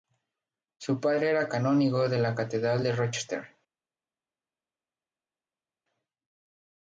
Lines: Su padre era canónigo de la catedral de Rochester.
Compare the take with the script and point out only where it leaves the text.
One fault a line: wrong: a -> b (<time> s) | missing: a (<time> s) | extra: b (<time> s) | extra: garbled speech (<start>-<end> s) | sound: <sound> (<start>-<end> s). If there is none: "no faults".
no faults